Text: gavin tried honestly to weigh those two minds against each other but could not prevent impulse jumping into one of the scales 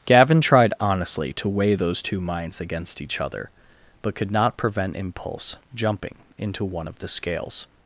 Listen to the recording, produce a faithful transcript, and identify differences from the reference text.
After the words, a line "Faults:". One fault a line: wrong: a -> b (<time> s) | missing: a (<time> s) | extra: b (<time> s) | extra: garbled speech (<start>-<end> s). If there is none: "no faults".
gavin tried honestly to weigh those two minds against each other but could not prevent impulse jumping into one of the scales
Faults:
no faults